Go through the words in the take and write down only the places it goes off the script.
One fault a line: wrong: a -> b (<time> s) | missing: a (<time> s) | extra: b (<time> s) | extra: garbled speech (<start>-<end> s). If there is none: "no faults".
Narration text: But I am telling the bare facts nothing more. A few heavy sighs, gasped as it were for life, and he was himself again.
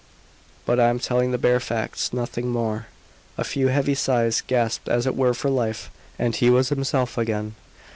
no faults